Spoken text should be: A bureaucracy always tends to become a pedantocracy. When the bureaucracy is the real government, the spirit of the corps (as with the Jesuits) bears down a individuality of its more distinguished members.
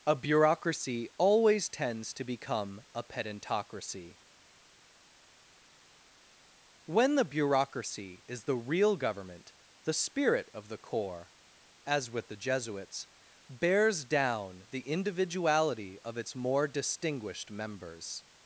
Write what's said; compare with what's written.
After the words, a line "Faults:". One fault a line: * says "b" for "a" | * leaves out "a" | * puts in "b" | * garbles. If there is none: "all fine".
A bureaucracy always tends to become a pedantocracy. When the bureaucracy is the real government, the spirit of the corps (as with the Jesuits) bears down the individuality of its more distinguished members.
Faults:
* says "the" for "a"